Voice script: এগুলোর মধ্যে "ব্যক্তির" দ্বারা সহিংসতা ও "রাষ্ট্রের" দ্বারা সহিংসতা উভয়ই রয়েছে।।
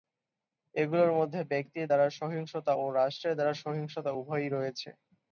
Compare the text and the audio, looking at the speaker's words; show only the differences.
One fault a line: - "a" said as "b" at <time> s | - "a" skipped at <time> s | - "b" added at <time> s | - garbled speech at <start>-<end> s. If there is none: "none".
none